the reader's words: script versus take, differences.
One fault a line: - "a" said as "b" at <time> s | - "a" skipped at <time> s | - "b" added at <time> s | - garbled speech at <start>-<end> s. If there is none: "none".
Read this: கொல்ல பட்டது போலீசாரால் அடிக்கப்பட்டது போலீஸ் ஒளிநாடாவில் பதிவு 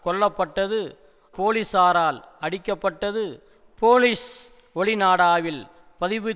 none